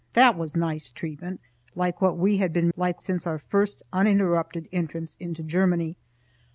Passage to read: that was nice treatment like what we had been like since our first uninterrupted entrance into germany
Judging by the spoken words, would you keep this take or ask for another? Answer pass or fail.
pass